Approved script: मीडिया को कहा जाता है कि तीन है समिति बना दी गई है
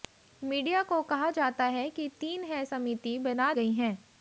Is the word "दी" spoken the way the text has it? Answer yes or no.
no